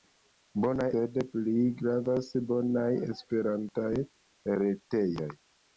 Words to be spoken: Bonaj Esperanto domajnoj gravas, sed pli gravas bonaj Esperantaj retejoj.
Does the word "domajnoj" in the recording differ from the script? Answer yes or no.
yes